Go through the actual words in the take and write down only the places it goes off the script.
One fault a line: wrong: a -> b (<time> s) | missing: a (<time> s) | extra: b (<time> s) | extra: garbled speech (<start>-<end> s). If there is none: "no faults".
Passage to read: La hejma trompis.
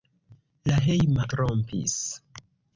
no faults